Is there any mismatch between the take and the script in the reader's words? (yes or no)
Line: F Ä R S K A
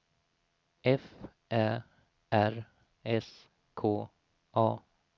no